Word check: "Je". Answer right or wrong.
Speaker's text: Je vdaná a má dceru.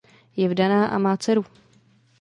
right